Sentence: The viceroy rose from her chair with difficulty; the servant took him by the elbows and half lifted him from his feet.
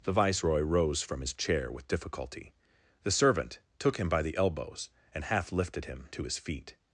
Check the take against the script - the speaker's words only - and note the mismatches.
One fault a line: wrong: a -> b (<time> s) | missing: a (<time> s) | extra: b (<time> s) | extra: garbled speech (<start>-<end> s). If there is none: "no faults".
wrong: her -> his (1.2 s)
wrong: from -> to (6.1 s)